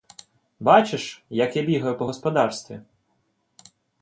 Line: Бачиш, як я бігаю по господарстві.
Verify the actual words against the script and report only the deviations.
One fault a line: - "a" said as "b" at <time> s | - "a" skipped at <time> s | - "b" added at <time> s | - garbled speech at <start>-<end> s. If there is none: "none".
none